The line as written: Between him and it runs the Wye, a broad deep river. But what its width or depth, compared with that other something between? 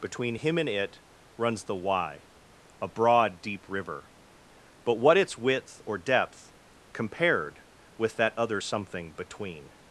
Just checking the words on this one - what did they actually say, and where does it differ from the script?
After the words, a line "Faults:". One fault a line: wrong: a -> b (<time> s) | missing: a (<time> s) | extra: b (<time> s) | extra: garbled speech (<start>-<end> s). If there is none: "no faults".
Between him and it runs the Wye, a broad deep river. But what its width or depth, compared with that other something between?
Faults:
no faults